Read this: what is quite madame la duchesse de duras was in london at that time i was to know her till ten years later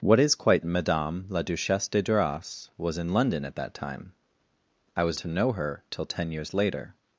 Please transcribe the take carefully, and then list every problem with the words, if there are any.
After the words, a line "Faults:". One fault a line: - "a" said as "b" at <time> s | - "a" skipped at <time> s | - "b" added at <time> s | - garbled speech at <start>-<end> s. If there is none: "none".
what is quite madame la duchesse de duras was in london at that time i was to know her till ten years later
Faults:
none